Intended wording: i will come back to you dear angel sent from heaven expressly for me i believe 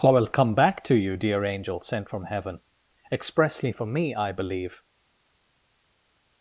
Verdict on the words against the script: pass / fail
pass